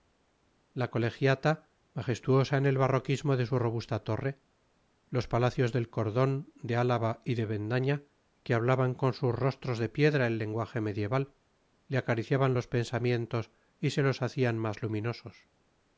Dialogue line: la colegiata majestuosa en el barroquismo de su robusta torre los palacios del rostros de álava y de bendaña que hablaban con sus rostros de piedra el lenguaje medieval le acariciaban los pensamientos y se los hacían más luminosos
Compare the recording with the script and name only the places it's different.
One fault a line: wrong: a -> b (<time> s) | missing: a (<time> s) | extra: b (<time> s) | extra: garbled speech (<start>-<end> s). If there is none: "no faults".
wrong: rostros -> cordón (5.9 s)